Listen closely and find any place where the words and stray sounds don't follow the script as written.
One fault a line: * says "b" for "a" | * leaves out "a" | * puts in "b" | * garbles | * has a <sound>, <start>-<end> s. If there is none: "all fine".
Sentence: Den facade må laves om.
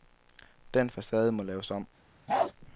* has a bark, 2.3-2.5 s